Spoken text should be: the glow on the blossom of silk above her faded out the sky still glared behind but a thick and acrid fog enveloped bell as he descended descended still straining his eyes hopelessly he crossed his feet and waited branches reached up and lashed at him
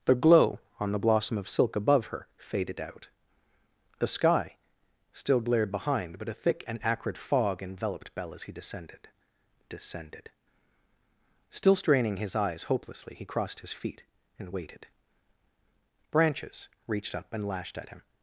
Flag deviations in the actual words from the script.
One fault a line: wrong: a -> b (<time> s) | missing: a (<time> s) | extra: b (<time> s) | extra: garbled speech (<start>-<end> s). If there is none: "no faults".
no faults